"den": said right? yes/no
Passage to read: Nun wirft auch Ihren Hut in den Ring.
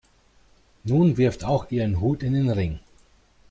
yes